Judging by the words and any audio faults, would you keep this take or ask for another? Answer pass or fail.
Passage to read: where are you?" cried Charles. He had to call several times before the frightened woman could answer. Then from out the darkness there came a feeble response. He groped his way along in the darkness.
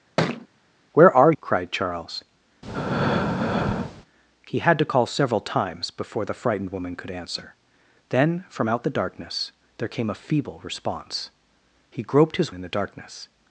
fail